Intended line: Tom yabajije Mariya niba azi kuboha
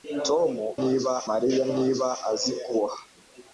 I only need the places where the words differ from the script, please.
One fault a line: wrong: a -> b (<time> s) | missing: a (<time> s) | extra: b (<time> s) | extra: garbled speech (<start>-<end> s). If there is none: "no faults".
wrong: yabajije -> niba (0.8 s)